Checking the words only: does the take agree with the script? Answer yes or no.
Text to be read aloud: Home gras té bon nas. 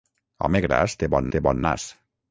no